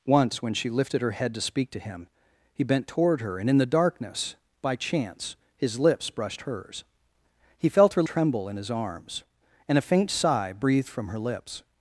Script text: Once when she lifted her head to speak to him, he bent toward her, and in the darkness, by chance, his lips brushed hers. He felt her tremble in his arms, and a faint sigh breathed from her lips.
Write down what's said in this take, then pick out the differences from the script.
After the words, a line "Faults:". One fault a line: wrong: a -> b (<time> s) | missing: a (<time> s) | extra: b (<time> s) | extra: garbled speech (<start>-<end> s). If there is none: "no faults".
Once when she lifted her head to speak to him, he bent toward her, and in the darkness, by chance, his lips brushed hers. He felt her tremble in his arms, and a faint sigh breathed from her lips.
Faults:
no faults